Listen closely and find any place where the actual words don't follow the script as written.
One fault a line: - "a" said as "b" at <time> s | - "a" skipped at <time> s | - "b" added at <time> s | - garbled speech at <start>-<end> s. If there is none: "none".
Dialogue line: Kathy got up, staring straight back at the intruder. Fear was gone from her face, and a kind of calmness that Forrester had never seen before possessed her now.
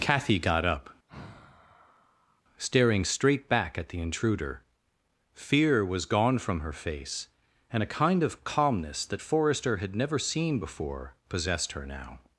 none